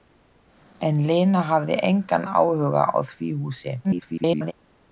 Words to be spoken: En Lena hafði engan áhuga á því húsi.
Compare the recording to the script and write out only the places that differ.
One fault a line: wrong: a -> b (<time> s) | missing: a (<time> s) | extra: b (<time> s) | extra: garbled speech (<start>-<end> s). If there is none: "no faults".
extra: garbled speech (3.8-4.5 s)